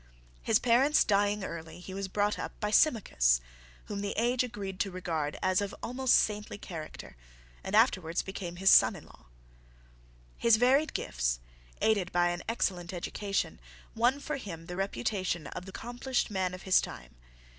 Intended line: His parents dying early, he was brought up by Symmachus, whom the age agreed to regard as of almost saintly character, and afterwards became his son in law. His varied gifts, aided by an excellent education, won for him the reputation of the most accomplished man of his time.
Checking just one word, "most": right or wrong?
wrong